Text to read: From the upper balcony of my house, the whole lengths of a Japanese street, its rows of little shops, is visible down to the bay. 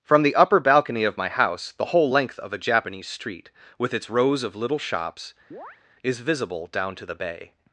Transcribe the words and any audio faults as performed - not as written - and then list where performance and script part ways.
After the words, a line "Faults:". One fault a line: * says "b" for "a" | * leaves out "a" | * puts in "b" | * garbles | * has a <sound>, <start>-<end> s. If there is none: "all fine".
From the upper balcony of my house, the whole length of a Japanese street, with its rows of little shops, is visible down to the bay.
Faults:
* says "length" for "lengths"
* puts in "with"
* has a chirp, 5.5-5.8 s